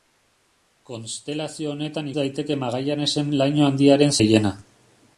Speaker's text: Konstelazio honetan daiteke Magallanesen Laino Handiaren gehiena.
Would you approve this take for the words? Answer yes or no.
yes